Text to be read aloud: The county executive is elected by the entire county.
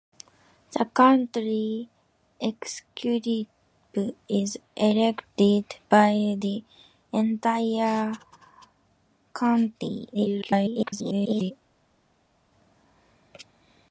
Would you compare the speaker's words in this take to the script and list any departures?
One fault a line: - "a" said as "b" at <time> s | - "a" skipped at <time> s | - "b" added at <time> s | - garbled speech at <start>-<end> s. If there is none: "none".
- garbled speech at 10.1-11.5 s